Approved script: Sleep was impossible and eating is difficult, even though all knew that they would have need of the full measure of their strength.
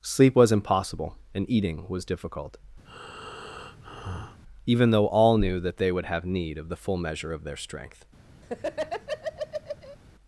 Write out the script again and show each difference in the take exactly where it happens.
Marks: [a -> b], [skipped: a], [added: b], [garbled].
Sleep was impossible and eating [is -> was] difficult, even though all knew that they would have need of the full measure of their strength.